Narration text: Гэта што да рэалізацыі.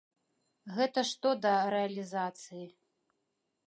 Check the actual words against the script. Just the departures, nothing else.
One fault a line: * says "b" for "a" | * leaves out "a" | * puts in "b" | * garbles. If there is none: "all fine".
all fine